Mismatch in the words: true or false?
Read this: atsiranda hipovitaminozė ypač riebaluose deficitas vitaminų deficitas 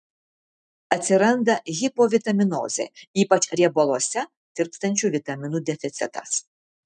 true